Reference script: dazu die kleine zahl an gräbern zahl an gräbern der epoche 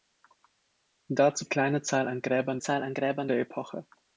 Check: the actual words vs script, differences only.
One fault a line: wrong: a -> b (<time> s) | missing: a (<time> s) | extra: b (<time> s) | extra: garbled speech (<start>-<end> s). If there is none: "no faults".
no faults